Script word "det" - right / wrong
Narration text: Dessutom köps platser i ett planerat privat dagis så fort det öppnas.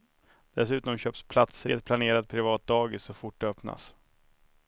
right